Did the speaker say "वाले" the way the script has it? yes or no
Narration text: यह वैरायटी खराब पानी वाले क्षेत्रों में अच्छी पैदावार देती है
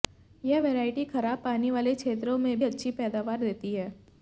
yes